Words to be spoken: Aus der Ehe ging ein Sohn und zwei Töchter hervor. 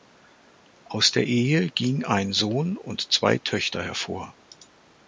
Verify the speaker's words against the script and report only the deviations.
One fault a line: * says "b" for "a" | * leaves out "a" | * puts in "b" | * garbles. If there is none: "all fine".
all fine